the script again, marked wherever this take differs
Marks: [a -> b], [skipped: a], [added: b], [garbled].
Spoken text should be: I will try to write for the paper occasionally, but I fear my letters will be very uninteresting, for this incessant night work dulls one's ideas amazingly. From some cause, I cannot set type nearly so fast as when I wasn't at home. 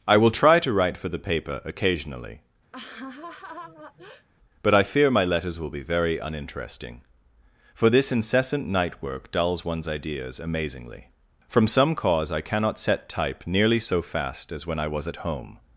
I will try to write for the paper occasionally, but I fear my letters will be very uninteresting, for this incessant night work dulls one's ideas amazingly. From some cause, I cannot set type nearly so fast as when I [wasn't -> was] at home.